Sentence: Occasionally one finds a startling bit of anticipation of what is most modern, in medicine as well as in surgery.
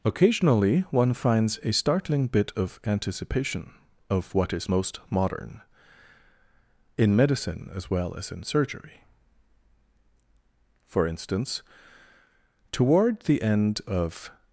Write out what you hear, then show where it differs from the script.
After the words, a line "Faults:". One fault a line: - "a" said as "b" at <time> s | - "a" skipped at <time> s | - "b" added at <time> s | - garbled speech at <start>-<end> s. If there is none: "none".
Occasionally one finds a startling bit of anticipation of what is most modern, in medicine as well as in surgery. For instance, toward the end of
Faults:
- "For instance toward the end of" added at 10.8 s